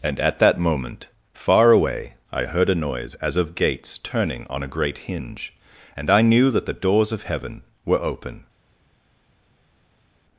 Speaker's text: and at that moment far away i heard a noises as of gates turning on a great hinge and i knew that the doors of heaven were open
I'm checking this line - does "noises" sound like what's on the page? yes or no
no